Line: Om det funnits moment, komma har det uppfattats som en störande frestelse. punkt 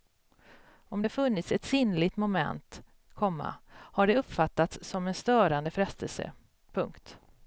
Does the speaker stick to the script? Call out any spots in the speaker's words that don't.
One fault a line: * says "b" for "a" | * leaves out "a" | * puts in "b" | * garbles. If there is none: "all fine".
* puts in "ett sinnligt"